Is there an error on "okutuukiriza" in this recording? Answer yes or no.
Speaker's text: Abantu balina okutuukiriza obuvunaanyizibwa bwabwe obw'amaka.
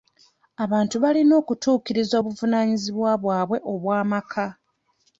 no